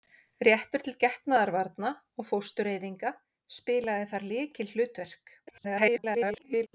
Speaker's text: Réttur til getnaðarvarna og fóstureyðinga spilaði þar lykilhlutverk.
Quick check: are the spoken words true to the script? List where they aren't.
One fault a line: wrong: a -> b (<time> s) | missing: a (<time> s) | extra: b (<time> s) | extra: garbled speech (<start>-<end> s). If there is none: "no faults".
extra: garbled speech (5.5-6.7 s)